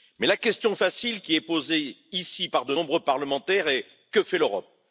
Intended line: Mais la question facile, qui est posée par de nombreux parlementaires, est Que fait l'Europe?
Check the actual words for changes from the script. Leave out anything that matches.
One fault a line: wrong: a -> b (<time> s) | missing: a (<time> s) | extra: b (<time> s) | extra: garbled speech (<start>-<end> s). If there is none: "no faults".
extra: ici (2.1 s)